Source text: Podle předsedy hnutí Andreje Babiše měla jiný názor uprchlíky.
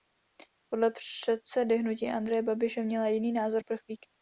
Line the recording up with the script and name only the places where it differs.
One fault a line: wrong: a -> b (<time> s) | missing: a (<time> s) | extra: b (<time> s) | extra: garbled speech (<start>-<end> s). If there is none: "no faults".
no faults